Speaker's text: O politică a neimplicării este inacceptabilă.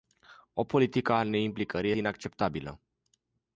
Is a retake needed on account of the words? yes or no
yes